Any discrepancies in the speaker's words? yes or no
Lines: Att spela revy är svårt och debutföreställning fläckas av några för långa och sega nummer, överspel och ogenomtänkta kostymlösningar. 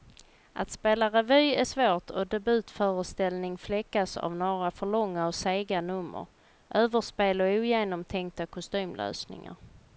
no